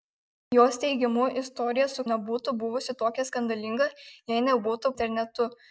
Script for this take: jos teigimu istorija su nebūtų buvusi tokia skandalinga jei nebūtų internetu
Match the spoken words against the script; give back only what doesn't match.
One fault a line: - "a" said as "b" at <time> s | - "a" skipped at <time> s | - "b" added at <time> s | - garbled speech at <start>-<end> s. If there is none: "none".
none